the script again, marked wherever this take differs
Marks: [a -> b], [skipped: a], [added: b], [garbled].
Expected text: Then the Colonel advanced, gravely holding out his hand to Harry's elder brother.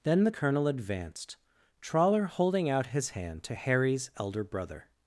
Then the Colonel advanced, [gravely -> trawler] holding out his hand to Harry's elder brother.